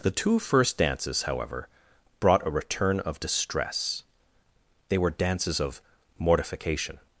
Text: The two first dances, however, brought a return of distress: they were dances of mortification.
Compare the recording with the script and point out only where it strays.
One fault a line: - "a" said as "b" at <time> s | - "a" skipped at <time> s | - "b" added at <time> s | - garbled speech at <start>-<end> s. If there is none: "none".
none